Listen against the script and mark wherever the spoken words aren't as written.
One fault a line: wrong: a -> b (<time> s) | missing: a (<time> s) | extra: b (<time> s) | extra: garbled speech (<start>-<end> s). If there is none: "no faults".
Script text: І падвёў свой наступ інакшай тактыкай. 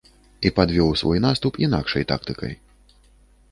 no faults